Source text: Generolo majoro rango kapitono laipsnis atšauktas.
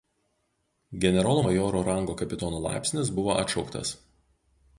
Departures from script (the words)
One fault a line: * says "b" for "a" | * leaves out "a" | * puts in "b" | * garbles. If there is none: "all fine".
* puts in "buvo"